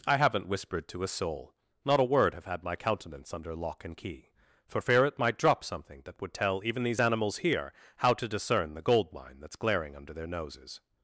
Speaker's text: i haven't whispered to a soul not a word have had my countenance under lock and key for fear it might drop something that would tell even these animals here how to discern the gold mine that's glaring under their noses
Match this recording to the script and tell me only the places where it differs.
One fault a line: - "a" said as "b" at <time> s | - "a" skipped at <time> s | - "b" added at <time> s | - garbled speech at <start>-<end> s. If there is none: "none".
none